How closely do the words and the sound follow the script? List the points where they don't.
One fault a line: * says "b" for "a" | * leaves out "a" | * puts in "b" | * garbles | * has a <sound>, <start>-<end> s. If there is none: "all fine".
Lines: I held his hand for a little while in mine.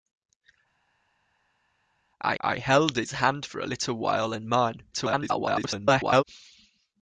* puts in "I"
* garbles